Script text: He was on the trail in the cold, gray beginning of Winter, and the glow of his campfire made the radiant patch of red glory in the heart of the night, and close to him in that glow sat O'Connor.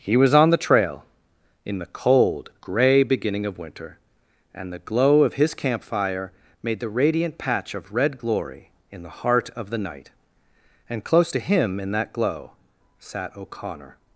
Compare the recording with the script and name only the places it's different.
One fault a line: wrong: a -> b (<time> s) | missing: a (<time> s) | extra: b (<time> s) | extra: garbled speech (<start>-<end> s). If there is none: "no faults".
no faults